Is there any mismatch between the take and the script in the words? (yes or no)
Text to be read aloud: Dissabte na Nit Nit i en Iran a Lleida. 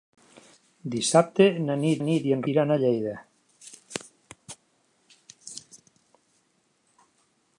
no